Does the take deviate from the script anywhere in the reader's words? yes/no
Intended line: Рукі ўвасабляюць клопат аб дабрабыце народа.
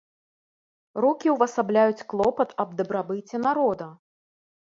no